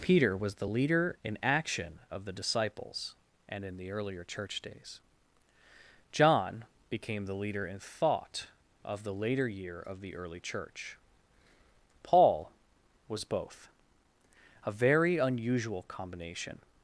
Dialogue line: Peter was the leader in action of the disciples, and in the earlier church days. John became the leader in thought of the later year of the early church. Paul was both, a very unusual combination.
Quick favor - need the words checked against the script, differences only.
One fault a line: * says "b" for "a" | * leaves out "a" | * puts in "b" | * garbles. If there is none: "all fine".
all fine